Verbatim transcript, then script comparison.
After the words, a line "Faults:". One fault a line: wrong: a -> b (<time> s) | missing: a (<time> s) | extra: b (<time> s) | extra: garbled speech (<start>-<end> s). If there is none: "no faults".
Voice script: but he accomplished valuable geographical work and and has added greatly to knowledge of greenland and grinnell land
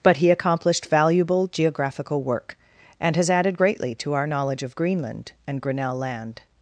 but he accomplished valuable geographical work and has added greatly to our knowledge of greenland and grinnell land
Faults:
missing: and (3.1 s)
extra: our (4.1 s)